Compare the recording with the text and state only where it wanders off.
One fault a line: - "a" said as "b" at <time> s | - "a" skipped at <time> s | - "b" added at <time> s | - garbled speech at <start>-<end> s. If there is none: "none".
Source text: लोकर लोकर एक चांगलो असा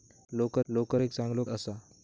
none